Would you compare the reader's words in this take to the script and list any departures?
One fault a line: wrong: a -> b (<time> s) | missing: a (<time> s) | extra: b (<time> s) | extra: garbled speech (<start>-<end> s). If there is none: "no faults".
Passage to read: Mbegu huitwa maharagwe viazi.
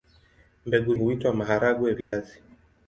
no faults